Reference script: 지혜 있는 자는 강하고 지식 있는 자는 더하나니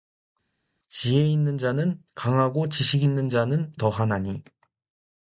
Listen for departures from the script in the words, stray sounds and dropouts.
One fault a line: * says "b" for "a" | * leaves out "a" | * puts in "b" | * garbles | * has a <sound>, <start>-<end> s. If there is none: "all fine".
all fine